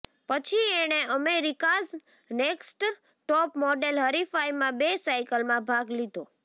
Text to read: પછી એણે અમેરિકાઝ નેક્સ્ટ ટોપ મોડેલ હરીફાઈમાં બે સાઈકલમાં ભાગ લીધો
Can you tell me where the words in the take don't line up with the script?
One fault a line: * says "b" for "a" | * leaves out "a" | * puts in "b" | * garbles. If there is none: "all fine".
all fine